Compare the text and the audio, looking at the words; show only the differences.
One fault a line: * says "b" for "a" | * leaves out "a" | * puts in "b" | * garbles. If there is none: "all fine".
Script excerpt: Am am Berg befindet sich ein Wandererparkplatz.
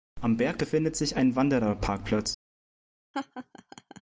* leaves out "am"